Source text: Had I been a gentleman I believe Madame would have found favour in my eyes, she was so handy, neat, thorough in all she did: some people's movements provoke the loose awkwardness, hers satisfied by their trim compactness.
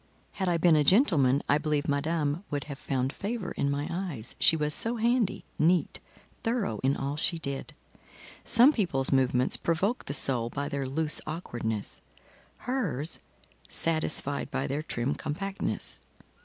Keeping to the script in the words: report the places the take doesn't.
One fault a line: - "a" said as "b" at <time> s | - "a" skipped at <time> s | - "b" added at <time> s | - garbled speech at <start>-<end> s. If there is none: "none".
- "soul by their" added at 10.1 s